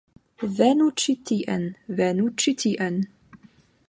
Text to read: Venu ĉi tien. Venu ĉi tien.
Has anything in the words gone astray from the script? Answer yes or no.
no